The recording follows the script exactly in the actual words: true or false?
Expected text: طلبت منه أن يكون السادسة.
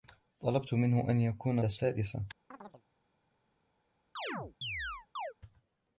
true